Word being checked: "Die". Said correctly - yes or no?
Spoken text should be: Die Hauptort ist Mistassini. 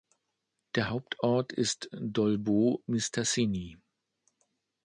no